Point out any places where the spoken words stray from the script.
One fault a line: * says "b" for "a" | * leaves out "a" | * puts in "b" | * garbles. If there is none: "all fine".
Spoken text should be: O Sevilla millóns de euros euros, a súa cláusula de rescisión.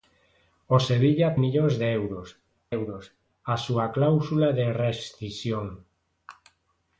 all fine